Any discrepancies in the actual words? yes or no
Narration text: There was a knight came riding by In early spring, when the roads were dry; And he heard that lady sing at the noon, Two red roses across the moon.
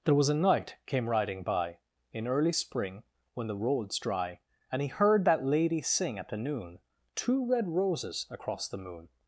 yes